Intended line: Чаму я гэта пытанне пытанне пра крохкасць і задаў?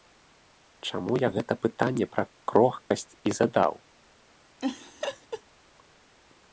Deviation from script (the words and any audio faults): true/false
true